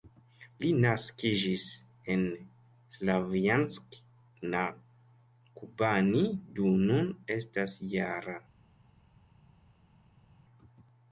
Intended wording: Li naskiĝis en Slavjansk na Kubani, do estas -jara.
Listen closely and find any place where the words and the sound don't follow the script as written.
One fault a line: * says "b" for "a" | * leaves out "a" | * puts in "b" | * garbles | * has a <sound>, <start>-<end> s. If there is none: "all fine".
* puts in "nun"